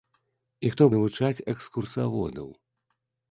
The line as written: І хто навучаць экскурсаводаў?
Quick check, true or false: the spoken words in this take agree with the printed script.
true